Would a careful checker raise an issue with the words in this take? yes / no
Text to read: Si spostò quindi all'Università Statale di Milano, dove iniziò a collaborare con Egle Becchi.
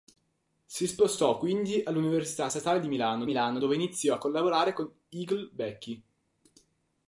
yes